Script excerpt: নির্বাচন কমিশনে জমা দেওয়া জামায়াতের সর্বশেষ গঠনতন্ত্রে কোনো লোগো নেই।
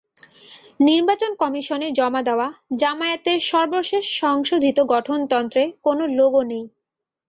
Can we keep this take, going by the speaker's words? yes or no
no